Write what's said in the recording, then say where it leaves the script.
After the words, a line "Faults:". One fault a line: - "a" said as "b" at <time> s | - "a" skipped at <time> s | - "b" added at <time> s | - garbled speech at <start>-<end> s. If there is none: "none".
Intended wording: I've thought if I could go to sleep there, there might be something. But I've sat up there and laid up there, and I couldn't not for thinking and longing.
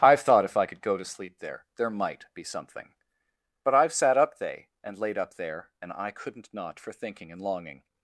I've thought if I could go to sleep there, there might be something. But I've sat up they and laid up there, and I couldn't not for thinking and longing.
Faults:
- "there" said as "they" at 4.4 s